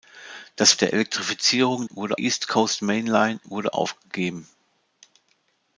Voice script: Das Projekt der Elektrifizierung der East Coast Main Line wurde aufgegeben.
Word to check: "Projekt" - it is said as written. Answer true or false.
false